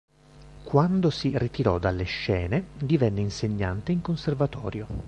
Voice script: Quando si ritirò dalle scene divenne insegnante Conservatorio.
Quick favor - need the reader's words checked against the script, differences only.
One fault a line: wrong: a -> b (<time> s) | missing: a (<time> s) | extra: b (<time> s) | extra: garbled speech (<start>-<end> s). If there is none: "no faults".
extra: in (3.9 s)